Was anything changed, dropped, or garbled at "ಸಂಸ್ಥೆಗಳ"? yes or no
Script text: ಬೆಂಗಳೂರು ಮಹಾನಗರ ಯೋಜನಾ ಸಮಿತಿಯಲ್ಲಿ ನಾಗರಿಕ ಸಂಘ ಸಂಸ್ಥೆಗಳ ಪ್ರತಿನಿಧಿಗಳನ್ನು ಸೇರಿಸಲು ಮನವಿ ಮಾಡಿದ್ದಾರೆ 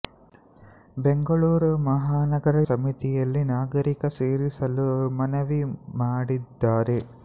yes